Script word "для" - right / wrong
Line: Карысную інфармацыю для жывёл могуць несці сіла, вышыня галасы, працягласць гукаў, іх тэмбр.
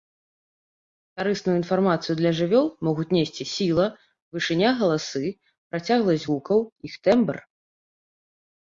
right